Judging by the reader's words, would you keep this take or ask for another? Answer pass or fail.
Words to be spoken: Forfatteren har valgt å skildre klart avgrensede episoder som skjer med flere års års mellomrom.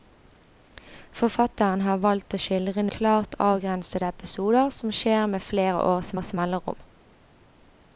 pass